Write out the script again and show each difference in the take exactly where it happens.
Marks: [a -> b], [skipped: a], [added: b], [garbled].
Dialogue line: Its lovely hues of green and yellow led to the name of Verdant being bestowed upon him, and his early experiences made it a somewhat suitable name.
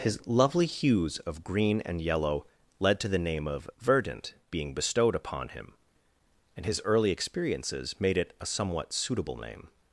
[Its -> His] lovely hues of green and yellow led to the name of Verdant being bestowed upon him, and his early experiences made it a somewhat suitable name.